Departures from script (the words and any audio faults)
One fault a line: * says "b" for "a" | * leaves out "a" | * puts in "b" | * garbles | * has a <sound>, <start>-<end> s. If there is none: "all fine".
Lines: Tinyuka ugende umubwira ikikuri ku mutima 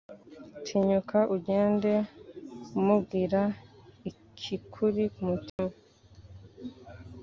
* has a dropout, 5.5-5.6 s